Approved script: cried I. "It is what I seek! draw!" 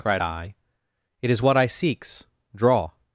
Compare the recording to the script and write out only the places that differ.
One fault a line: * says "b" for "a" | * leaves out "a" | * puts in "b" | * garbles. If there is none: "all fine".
* says "seeks" for "seek"